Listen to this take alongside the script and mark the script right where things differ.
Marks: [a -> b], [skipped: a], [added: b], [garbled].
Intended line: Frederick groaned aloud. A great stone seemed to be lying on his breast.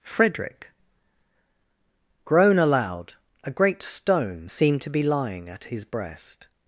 Frederick [groaned -> groan] aloud. A great stone seemed to be lying [on -> at] his breast.